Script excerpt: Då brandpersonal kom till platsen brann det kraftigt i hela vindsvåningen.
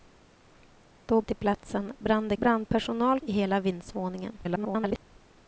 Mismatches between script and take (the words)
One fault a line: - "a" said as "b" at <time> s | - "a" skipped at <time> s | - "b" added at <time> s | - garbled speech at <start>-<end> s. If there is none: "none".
- "brandpersonal kom" skipped at 1.2 s
- "kraftigt" said as "brandpersonal" at 2.3 s
- garbled speech at 4.4-5.0 s